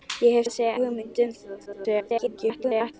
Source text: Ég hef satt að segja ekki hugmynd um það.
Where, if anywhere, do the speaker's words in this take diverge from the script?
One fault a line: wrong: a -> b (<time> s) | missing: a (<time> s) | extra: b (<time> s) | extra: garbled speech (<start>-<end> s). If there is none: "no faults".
missing: satt (0.5 s)
missing: ekki (0.7 s)
extra: garbled speech (1.7-2.9 s)